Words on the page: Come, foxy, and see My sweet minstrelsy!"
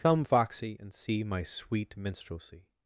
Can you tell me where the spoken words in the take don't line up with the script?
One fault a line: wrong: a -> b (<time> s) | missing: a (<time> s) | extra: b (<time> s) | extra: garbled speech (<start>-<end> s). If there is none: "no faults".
no faults